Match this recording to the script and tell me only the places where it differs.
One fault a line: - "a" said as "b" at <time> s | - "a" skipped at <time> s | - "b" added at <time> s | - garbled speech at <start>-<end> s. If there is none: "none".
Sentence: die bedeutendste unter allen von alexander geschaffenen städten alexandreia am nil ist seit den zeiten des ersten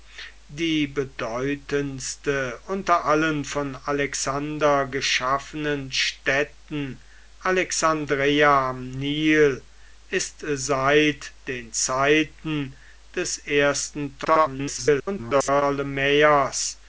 - garbled speech at 14.2-15.6 s